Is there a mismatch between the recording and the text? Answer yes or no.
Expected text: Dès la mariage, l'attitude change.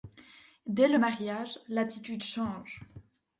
yes